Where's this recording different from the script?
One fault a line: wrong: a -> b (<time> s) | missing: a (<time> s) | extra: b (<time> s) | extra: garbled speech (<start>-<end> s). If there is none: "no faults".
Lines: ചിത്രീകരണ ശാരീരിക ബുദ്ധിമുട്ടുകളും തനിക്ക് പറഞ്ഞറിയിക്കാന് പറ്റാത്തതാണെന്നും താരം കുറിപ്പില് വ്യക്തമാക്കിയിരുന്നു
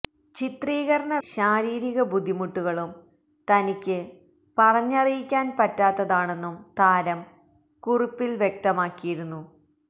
no faults